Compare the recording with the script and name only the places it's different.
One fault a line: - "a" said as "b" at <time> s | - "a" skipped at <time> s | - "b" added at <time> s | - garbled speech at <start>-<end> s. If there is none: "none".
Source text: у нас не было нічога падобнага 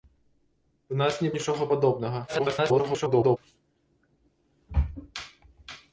- "было" skipped at 1.3 s
- garbled speech at 2.3-3.4 s